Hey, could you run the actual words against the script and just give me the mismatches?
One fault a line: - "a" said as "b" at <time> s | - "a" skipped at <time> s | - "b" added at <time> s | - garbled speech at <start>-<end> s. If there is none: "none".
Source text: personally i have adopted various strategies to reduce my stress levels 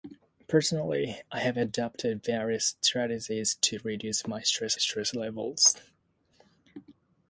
- "stress" added at 4.7 s